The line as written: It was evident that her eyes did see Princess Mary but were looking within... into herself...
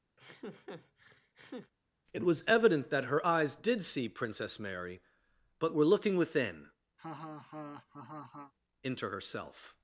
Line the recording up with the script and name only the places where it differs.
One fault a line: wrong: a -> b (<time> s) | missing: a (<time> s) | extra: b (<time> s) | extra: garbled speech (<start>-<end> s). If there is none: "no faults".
no faults